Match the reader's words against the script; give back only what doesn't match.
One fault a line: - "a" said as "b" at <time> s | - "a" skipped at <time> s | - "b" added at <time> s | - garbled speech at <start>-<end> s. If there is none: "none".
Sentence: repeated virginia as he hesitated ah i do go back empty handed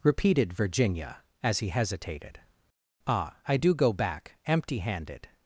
none